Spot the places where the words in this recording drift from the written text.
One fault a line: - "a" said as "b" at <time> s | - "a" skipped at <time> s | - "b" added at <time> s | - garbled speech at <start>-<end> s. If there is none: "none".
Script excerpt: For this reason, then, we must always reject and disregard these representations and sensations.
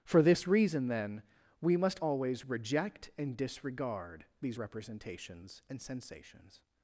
none